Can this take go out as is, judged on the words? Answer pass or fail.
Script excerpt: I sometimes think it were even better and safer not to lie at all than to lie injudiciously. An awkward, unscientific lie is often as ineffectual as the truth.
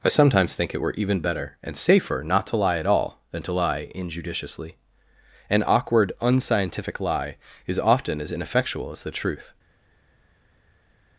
pass